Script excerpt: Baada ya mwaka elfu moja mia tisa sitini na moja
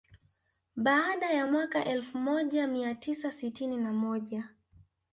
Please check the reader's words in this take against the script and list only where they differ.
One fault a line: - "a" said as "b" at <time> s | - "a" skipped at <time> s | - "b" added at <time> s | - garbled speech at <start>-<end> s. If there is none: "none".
none